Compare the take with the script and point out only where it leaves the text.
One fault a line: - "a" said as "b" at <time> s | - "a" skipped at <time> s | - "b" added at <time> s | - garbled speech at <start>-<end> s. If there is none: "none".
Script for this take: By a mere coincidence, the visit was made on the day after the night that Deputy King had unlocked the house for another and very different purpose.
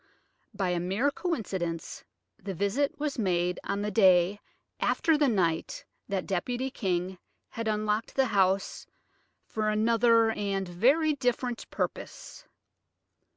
none